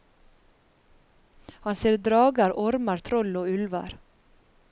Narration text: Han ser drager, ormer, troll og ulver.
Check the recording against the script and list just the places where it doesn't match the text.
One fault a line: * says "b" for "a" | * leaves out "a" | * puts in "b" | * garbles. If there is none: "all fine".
all fine